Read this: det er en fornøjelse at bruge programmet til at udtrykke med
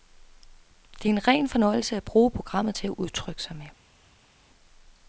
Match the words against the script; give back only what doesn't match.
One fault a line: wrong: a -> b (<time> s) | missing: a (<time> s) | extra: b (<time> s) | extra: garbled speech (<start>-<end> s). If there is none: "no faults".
extra: ren (1.3 s)
extra: sig (3.4 s)